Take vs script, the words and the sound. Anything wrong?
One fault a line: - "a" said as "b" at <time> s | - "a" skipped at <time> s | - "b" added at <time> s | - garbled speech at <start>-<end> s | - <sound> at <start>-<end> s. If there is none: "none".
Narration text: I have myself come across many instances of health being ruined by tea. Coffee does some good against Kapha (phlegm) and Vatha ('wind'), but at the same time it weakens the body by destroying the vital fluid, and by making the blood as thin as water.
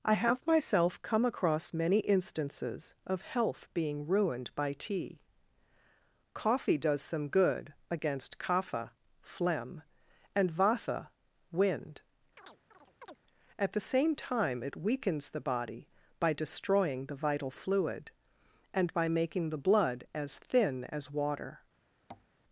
- "but" skipped at 12.0 s
- chirp at 12.4-13.2 s
- tap at 22.1-22.3 s